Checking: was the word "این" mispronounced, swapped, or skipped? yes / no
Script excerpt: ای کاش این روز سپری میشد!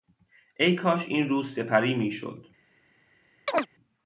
no